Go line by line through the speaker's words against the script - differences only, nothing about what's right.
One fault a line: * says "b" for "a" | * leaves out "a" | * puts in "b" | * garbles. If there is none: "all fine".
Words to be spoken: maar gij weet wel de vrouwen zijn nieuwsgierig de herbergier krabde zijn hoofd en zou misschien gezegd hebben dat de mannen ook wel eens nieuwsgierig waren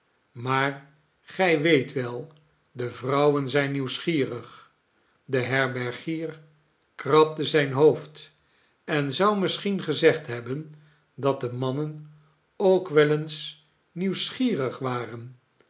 all fine